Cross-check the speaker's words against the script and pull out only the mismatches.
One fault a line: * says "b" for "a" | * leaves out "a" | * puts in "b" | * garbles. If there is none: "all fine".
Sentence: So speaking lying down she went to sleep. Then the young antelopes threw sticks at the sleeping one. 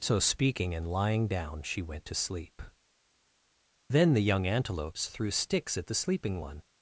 * puts in "and"